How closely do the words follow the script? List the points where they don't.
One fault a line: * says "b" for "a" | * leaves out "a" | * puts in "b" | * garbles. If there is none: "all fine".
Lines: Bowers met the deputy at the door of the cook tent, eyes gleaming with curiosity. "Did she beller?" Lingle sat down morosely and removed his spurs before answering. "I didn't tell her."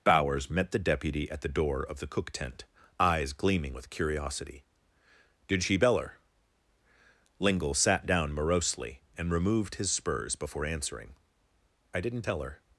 all fine